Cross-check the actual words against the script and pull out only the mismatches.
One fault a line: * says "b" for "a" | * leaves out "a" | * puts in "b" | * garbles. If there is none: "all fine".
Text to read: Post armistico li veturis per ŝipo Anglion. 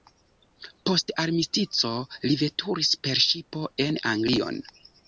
* puts in "en"